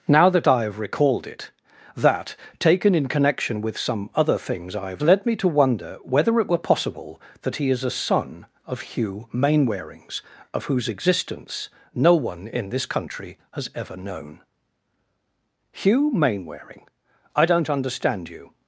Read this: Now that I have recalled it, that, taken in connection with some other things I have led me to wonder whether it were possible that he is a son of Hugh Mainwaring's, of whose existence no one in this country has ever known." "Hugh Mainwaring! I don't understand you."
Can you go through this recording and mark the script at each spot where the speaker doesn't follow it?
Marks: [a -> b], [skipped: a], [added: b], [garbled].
Now that I have recalled it, that, taken in connection with some other things I have led me to wonder whether it were possible that he is a son of Hugh Mainwaring's, of whose existence no one in this country has ever known." "Hugh Mainwaring! I don't understand you."